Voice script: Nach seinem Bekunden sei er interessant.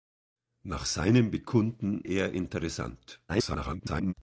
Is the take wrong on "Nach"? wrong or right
right